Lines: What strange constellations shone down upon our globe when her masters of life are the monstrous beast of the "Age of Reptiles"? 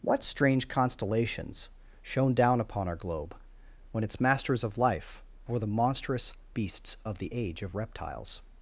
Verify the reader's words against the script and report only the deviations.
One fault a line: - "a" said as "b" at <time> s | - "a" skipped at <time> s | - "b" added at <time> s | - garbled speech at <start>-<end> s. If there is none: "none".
- "her" said as "its" at 4.0 s
- "are" said as "were" at 5.5 s
- "beast" said as "beasts" at 6.5 s